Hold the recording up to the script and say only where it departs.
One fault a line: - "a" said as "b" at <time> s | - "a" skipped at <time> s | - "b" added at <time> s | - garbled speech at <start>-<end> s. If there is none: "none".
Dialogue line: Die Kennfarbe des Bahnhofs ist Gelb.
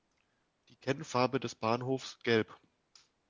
- "ist" skipped at 2.2 s